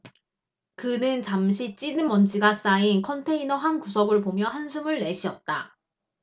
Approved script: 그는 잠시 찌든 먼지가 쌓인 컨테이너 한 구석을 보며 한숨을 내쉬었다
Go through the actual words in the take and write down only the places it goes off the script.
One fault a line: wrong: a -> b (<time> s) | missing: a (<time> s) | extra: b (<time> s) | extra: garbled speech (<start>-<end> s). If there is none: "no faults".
no faults